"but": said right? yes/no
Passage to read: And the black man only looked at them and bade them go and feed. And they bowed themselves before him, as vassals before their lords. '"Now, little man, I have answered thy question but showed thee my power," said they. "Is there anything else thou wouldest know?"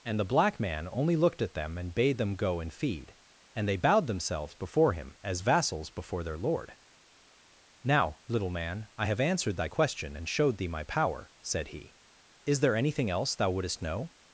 no